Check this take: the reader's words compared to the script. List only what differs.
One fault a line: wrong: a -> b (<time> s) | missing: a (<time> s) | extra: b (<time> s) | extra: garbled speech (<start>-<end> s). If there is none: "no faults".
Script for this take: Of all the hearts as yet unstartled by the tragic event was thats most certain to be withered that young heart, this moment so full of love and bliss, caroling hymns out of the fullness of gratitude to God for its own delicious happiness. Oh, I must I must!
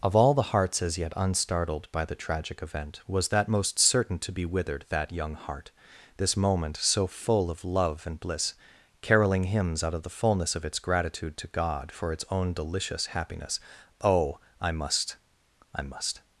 wrong: thats -> that (3.3 s)
extra: its (10.7 s)